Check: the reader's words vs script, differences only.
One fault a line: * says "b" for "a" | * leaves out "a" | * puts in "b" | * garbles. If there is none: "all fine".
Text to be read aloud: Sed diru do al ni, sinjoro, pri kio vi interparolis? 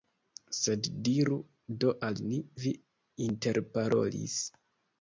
* leaves out "sinjoro pri kio"